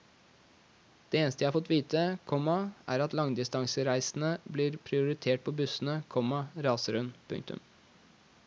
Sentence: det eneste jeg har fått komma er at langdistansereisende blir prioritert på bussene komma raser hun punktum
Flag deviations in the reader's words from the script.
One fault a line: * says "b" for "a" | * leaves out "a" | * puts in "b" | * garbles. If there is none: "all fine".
* puts in "vite"